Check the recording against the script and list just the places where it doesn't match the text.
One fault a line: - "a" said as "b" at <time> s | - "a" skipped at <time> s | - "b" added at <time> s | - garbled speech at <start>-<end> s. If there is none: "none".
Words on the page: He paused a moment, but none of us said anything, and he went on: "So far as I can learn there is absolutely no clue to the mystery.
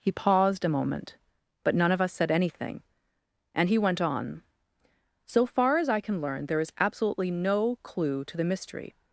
none